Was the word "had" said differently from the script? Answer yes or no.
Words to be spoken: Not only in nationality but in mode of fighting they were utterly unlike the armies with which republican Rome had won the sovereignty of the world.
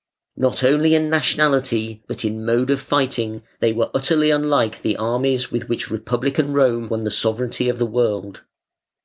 yes